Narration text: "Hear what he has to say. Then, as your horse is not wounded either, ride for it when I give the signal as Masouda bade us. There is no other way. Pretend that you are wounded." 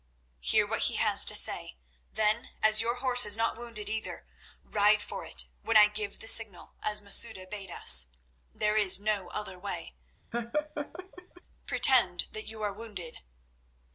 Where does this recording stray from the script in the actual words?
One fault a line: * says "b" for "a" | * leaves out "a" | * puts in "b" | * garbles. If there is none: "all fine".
all fine